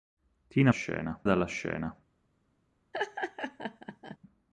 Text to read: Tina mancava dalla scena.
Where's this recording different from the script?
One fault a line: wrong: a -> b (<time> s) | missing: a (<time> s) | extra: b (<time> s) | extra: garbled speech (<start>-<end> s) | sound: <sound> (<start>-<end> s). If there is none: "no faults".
wrong: mancava -> scena (0.7 s)
sound: laugh (2.9-4.2 s)